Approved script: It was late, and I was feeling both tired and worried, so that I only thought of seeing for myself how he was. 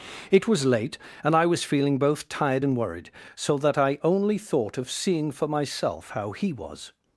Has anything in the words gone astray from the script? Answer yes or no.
no